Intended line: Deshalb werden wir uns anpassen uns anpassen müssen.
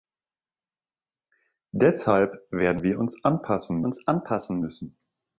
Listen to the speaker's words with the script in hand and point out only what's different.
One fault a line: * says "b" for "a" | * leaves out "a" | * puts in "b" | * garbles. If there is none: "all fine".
all fine